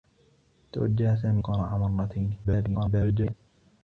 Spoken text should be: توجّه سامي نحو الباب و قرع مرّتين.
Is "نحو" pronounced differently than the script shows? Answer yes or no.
yes